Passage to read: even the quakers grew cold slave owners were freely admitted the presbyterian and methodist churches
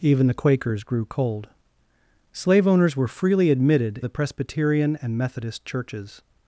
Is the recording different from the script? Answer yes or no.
no